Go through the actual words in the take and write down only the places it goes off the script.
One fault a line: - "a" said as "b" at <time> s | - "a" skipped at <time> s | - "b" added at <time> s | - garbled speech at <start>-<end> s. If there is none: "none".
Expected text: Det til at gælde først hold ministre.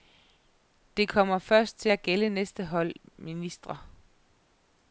- "kommer først" added at 1.1 s
- "først" said as "næste" at 2.3 s